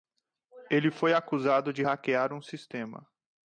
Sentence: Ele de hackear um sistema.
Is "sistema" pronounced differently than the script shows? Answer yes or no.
no